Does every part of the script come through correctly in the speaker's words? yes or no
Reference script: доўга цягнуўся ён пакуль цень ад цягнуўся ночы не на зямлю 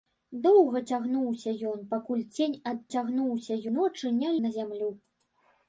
yes